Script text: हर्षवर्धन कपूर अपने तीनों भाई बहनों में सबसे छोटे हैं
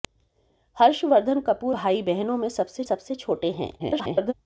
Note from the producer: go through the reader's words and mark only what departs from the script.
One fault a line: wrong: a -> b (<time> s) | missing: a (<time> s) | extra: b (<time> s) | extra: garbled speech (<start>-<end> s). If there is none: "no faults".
missing: अपने तीनों (1.8 s)
extra: सबसे (2.8 s)
extra: garbled speech (3.8-4.3 s)